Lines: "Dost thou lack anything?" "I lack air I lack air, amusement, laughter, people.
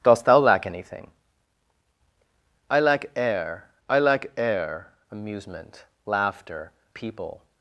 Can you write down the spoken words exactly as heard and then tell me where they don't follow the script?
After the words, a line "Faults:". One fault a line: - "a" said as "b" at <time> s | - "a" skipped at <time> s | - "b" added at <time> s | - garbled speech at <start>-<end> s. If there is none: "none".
"Dost thou lack anything?" "I lack air I lack air, amusement, laughter, people.
Faults:
none